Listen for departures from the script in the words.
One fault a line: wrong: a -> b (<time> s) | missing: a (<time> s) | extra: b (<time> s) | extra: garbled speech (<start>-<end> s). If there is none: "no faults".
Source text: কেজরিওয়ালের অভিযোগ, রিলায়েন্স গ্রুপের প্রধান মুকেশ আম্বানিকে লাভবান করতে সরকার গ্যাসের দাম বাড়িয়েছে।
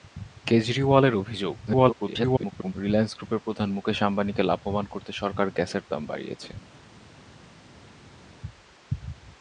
extra: garbled speech (1.7-2.7 s)